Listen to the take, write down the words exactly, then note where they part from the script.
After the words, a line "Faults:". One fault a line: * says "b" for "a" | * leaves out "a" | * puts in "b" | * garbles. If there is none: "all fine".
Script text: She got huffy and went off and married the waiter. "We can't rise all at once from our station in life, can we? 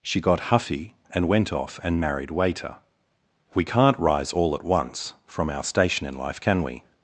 She got huffy and went off and married waiter. "We can't rise all at once from our station in life, can we?
Faults:
* leaves out "the"